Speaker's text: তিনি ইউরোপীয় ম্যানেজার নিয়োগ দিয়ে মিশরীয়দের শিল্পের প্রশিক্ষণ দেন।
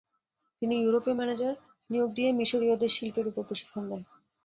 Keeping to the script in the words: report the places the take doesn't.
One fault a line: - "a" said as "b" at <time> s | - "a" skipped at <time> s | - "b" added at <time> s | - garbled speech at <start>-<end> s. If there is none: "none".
- "উপর" added at 3.3 s